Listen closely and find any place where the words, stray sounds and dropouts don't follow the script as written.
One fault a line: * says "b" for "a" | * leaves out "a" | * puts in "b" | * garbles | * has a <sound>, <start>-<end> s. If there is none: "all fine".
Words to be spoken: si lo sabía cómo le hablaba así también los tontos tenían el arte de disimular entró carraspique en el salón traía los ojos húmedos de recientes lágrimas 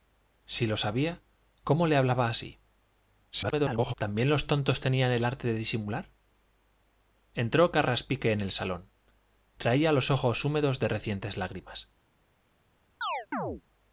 * garbles
* has a chirp, 13.0-13.6 s